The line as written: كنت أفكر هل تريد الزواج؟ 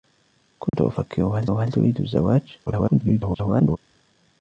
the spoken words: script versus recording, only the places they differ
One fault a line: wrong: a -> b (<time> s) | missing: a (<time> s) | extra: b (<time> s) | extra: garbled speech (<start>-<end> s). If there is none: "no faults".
extra: هل (1.5 s)
extra: garbled speech (2.7-3.8 s)